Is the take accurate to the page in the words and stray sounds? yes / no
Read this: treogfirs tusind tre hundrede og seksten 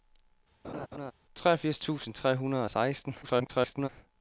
no